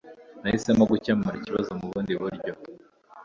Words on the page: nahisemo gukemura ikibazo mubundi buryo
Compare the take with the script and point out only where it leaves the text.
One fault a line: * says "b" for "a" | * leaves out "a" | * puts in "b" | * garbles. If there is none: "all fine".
all fine